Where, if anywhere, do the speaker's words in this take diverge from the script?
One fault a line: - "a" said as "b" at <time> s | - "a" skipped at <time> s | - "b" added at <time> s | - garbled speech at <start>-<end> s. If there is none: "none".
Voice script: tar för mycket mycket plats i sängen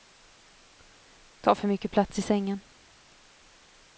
- "mycket" skipped at 1.9 s